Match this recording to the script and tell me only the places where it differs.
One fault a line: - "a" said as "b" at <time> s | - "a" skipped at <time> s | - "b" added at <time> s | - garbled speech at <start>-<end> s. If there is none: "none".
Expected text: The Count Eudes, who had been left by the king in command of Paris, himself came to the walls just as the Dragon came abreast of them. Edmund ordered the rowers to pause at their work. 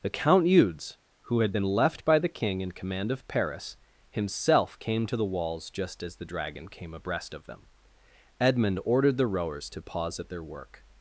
none